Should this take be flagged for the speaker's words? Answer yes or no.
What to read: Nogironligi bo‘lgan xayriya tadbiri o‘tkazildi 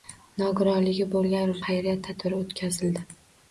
no